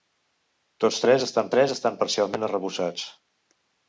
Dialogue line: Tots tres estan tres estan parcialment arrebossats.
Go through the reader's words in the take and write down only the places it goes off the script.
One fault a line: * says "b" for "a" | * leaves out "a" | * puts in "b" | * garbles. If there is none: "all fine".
all fine